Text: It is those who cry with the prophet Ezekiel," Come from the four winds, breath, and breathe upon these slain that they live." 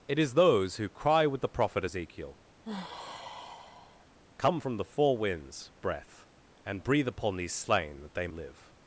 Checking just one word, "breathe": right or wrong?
right